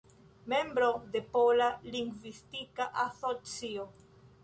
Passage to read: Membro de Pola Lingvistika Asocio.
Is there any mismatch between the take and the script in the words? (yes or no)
no